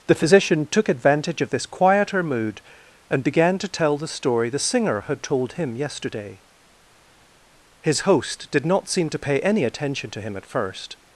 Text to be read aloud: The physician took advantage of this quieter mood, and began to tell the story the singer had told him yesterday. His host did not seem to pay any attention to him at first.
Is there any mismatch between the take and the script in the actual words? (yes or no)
no